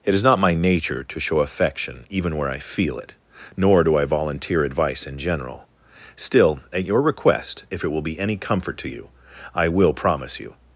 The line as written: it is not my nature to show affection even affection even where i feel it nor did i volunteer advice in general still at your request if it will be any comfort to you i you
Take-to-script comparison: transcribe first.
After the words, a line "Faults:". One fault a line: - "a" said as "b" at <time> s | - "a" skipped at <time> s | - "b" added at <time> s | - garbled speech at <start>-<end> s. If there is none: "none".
it is not my nature to show affection even where i feel it nor do i volunteer advice in general still at your request if it will be any comfort to you i will promise you
Faults:
- "affection even" skipped at 2.4 s
- "did" said as "do" at 3.8 s
- "will promise" added at 9.7 s